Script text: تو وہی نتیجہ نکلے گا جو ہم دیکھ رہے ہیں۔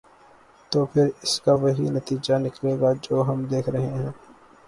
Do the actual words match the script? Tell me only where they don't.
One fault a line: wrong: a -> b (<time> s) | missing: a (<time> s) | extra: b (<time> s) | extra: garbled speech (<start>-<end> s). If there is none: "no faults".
extra: پھر اس کا (0.8 s)